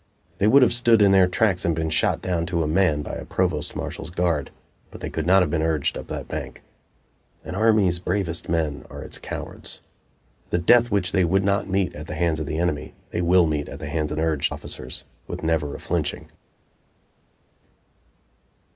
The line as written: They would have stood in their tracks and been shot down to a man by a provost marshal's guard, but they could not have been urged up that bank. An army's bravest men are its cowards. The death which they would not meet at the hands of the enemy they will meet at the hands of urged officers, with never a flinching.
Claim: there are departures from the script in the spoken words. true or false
false